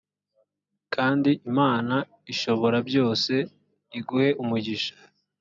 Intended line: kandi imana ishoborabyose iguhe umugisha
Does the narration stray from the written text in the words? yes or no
no